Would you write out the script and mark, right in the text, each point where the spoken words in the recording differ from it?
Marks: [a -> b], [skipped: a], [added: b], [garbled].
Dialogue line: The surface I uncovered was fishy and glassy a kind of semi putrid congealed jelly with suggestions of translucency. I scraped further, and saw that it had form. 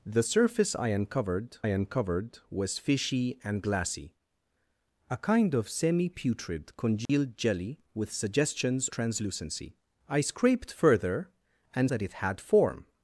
The surface I uncovered [added: uncovered] was fishy and glassy a kind of semi putrid congealed jelly with suggestions [skipped: of] translucency. I scraped further, and [skipped: saw] that it had form.